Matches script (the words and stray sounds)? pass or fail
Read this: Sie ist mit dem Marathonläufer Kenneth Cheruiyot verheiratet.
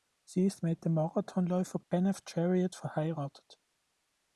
fail